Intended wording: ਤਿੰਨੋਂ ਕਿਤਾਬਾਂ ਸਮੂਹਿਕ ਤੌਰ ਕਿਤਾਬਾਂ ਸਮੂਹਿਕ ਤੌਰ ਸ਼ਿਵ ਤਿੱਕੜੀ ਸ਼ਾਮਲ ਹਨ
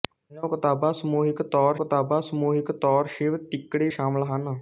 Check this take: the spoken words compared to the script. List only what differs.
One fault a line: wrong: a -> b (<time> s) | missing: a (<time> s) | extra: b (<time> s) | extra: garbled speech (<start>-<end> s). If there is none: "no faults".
no faults